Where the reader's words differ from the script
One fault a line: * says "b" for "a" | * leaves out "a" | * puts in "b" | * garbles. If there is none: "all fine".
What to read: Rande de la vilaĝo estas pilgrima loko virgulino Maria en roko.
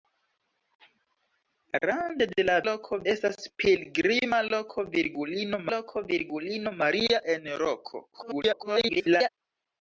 * says "loko" for "vilaĝo"
* puts in "loko virgulino"
* garbles